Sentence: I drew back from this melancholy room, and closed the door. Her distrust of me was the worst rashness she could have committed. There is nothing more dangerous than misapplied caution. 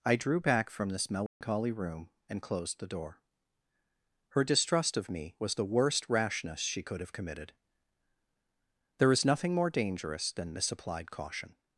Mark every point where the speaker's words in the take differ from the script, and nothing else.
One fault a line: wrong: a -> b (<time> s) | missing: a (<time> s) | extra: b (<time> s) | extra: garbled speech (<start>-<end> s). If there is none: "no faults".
no faults